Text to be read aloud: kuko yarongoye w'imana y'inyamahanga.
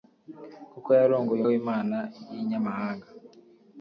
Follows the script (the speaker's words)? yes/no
yes